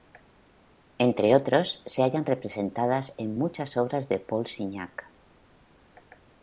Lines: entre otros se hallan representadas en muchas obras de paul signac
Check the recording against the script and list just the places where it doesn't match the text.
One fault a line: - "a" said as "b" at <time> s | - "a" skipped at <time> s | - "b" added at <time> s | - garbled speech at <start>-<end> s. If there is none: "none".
none